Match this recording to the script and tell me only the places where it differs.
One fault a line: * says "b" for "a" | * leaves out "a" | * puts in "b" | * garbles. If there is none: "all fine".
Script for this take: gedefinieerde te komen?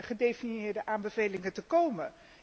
* puts in "aanbevelingen"